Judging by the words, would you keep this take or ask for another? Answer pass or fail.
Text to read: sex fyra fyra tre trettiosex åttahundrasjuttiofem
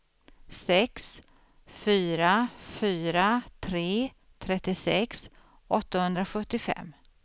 pass